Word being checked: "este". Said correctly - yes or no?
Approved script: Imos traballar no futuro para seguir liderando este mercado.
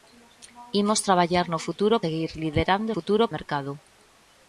no